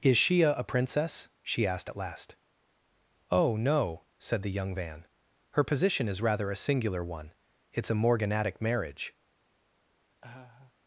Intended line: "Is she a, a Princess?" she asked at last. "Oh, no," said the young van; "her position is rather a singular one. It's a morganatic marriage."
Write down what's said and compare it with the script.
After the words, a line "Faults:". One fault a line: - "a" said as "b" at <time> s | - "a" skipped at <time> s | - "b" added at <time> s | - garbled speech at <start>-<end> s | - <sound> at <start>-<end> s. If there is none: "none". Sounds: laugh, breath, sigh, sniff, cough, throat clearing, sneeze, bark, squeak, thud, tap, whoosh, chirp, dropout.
"Is she a, a Princess?" she asked at last. "Oh, no," said the young van; "her position is rather a singular one. It's a morganatic marriage."
Faults:
- laugh at 10.2-10.7 s